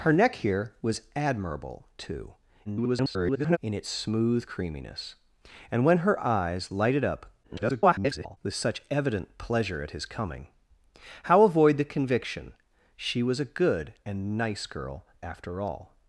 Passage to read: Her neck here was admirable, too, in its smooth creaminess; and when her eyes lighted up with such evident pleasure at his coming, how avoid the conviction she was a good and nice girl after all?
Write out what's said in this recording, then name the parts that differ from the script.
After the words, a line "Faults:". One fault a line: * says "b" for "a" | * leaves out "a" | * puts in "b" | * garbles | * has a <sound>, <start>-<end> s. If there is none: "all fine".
Her neck here was admirable, too, [garbled] in its smooth creaminess; and when her eyes lighted up [garbled] with such evident pleasure at his coming, how avoid the conviction she was a good and nice girl after all?
Faults:
* garbles
* garbles